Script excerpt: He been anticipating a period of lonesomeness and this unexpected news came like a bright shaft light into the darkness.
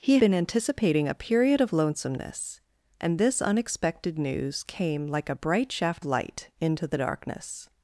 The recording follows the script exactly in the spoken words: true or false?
true